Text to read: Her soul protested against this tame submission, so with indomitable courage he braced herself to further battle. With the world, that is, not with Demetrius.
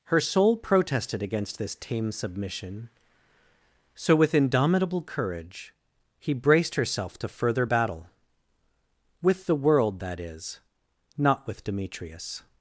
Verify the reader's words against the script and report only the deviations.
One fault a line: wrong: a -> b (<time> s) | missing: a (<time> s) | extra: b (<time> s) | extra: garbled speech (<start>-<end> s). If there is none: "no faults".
no faults